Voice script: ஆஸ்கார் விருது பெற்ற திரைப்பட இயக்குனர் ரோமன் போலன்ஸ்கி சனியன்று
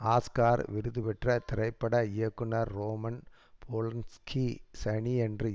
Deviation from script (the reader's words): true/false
false